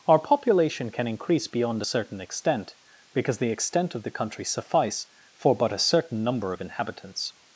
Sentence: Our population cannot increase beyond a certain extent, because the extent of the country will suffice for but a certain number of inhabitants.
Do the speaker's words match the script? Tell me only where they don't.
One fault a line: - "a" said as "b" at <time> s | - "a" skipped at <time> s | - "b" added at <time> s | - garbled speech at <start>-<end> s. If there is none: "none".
- "cannot" said as "can" at 0.9 s
- "will" skipped at 4.4 s